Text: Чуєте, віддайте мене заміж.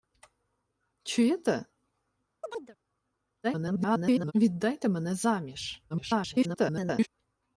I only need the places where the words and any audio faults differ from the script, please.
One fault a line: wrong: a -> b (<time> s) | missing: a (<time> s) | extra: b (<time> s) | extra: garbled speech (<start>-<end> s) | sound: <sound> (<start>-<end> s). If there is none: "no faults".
sound: chirp (2.4-2.8 s)
extra: garbled speech (3.4-4.3 s)
extra: garbled speech (5.9-7.1 s)